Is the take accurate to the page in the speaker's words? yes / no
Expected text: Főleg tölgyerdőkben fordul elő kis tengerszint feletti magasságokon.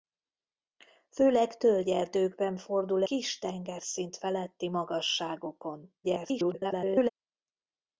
no